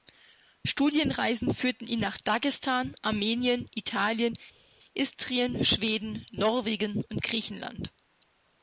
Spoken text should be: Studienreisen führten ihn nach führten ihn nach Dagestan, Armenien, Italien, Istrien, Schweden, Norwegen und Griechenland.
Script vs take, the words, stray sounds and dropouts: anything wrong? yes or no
yes